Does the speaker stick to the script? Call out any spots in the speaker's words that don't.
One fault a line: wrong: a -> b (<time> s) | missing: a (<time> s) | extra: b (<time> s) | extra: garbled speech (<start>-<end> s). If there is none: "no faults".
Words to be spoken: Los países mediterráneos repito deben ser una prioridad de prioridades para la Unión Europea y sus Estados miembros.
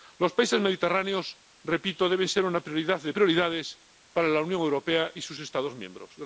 no faults